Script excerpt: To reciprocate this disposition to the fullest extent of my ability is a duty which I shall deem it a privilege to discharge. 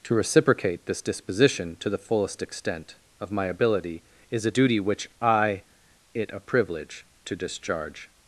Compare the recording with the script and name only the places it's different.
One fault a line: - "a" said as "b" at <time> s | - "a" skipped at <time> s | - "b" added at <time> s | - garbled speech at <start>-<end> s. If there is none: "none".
- "shall deem" skipped at 5.6 s